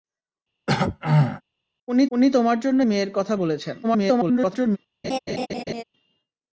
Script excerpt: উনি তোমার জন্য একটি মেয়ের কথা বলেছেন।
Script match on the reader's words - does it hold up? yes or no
no